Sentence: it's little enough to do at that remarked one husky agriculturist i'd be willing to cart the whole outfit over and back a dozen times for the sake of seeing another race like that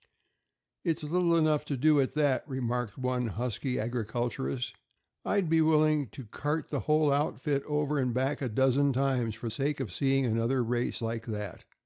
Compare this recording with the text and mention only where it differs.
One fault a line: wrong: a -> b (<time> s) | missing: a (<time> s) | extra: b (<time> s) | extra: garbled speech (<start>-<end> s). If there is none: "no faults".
missing: the (9.5 s)